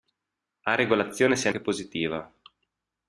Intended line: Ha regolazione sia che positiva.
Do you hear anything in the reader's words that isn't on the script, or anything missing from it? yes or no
no